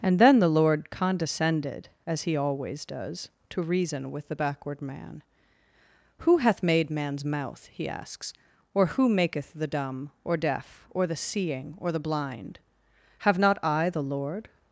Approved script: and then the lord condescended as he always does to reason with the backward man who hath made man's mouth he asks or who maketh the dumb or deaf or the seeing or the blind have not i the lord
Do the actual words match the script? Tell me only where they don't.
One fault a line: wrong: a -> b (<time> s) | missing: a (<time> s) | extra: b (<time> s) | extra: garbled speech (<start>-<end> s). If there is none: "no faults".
no faults